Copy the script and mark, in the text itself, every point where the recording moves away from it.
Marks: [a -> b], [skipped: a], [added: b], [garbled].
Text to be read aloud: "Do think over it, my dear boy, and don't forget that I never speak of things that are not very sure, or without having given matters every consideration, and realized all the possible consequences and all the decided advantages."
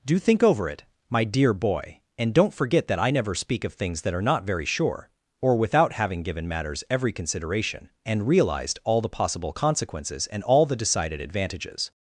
"Do think over it, my dear boy, and don't forget that I never speak of things that are not very sure, or without having given matters every consideration, and realized all the possible consequences and all the decided advantages."